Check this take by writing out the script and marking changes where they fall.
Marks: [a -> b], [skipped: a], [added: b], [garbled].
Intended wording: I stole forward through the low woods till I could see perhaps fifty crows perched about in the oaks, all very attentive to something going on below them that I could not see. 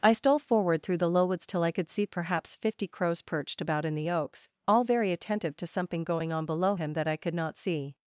I stole forward through the low woods till I could see perhaps fifty crows perched about in the oaks, all very attentive to something going on below [them -> him] that I could not see.